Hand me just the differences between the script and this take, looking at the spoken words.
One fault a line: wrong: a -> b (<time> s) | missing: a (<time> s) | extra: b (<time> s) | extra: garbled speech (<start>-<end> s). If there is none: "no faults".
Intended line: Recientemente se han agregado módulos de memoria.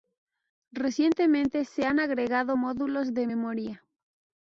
no faults